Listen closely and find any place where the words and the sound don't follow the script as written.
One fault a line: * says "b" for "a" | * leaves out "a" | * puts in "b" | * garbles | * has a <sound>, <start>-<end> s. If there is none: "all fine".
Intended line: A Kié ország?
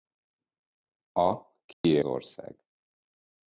* has a dropout, 1.7-1.8 s